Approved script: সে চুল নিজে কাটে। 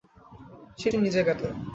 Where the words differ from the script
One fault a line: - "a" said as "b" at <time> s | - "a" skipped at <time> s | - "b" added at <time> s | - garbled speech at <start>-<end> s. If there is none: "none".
none